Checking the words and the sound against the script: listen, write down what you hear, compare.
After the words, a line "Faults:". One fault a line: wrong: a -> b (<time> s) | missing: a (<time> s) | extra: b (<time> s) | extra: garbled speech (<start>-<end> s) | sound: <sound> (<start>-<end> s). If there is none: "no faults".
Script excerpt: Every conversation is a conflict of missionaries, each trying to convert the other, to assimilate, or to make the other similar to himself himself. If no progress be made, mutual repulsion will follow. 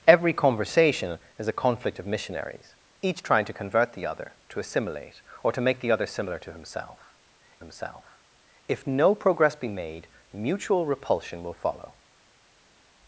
Every conversation is a conflict of missionaries, each trying to convert the other, to assimilate, or to make the other similar to himself himself. If no progress be made, mutual repulsion will follow.
Faults:
no faults